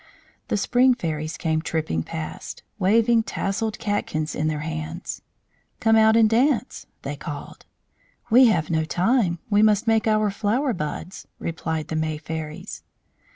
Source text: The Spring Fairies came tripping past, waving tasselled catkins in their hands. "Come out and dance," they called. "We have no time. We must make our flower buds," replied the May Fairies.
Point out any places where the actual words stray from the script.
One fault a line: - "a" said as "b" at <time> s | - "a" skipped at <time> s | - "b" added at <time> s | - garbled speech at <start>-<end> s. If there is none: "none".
none